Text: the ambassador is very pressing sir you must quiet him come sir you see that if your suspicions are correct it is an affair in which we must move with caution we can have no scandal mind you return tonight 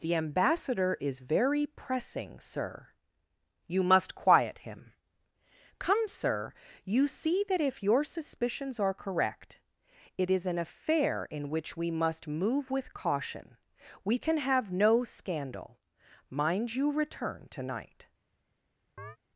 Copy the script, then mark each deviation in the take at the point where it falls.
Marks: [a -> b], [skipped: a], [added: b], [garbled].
the ambassador is very pressing sir you must quiet him come sir you see that if your suspicions are correct it is an affair in which we must move with caution we can have no scandal mind you return tonight